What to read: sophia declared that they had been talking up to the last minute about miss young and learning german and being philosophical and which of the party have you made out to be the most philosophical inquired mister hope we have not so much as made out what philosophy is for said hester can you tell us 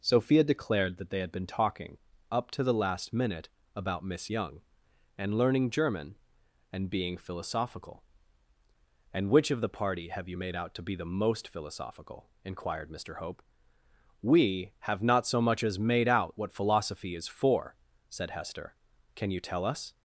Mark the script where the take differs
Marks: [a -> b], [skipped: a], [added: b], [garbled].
sophia declared that they had been talking up to the last minute about miss young and learning german and being philosophical and which of the party have you made out to be the most philosophical inquired mister hope we have not so much as made out what philosophy is for said hester can you tell us